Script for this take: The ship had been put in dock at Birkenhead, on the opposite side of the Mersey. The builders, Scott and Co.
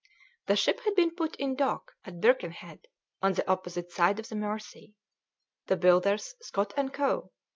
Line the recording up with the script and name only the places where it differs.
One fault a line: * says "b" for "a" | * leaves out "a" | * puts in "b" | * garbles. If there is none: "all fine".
all fine